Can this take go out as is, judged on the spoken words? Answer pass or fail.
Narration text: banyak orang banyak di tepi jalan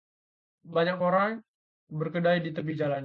fail